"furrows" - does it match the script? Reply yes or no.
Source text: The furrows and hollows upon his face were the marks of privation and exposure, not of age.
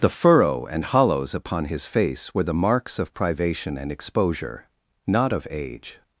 no